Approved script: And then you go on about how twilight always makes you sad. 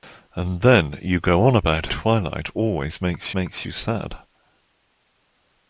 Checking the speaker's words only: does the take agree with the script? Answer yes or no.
no